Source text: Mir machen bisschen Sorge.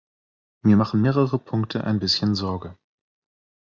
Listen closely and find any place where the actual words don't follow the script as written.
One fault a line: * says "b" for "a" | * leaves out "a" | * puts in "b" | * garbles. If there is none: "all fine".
* puts in "mehrere Punkte ein"